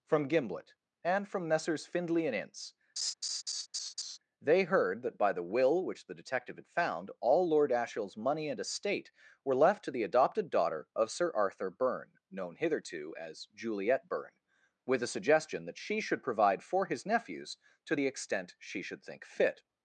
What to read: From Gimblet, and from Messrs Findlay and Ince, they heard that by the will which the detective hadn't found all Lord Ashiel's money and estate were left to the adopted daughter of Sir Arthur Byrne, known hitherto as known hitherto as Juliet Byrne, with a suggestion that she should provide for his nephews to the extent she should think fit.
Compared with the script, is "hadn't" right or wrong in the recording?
wrong